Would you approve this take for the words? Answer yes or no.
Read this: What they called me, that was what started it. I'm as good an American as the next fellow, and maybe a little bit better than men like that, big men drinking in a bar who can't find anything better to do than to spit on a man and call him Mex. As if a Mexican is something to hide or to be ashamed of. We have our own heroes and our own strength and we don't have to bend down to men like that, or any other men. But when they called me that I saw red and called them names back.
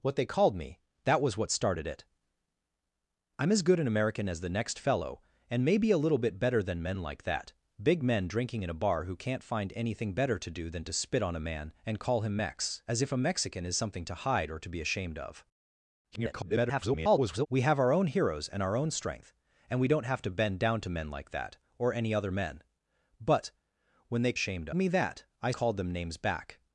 no